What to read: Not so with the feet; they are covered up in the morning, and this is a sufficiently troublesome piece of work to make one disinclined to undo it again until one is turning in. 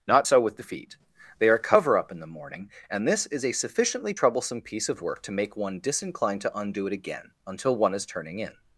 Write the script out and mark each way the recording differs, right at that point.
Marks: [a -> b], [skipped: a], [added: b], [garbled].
Not so with the feet; they are [covered -> cover] up in the morning, and this is a sufficiently troublesome piece of work to make one disinclined to undo it again until one is turning in.